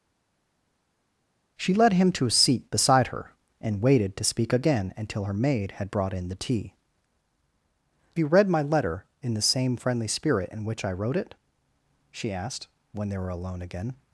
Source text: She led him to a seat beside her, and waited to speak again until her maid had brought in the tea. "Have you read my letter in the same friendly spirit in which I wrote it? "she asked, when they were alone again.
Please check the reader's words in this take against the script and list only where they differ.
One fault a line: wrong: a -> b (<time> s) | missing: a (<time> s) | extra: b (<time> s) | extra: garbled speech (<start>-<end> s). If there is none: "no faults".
missing: Have (6.8 s)